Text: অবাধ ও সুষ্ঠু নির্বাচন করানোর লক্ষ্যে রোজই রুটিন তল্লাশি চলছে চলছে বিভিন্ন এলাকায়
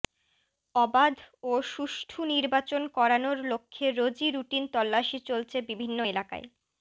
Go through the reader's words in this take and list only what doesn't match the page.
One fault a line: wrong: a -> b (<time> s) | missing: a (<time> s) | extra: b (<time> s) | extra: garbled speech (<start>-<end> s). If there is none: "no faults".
missing: চলছে (5.6 s)